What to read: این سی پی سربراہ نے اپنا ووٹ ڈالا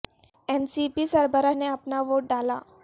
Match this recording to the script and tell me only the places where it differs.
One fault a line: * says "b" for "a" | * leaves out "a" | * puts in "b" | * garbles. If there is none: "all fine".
all fine